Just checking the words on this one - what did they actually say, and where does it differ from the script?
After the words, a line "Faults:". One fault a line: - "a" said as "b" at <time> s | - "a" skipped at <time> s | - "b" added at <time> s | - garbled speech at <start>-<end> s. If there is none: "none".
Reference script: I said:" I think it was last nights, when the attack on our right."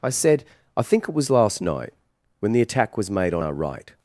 I said:" I think it was last night, when the attack was made on our right."
Faults:
- "nights" said as "night" at 1.6 s
- "was made" added at 3.0 s